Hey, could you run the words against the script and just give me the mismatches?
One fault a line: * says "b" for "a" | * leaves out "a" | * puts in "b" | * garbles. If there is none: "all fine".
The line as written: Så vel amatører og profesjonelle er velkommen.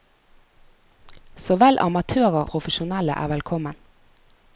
* leaves out "og"